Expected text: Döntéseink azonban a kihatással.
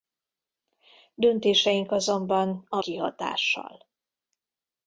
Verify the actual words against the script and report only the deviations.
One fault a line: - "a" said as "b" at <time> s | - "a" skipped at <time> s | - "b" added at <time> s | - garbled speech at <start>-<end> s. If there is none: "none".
none